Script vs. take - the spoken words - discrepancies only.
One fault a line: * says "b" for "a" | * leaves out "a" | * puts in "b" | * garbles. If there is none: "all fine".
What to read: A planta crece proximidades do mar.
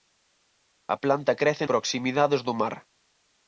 all fine